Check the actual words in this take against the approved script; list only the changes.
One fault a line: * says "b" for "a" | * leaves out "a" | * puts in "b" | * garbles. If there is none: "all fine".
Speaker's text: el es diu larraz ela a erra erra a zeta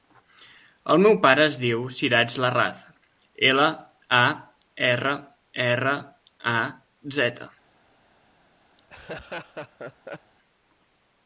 * puts in "meu pare"
* puts in "siraj"